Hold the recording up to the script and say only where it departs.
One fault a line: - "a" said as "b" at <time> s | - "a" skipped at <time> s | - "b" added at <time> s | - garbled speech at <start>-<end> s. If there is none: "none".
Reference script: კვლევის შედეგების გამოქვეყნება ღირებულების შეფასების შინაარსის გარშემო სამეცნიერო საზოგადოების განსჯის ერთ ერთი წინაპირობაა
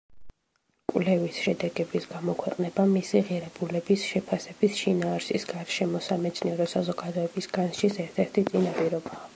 - "მისი" added at 2.9 s